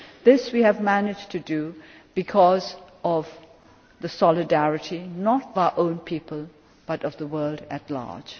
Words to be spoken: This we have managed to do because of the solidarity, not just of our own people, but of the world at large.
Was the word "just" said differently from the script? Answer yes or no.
yes